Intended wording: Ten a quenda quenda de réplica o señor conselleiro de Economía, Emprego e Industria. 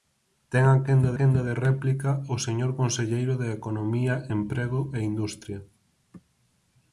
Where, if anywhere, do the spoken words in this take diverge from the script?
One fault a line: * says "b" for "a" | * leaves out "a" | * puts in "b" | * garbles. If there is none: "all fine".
all fine